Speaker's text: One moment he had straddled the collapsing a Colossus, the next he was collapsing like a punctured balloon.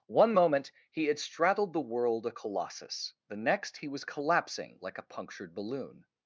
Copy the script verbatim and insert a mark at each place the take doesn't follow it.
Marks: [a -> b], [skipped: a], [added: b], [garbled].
One moment he had straddled the [collapsing -> world] a Colossus, the next he was collapsing like a punctured balloon.